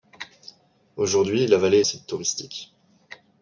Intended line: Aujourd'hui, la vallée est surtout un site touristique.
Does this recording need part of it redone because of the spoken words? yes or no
yes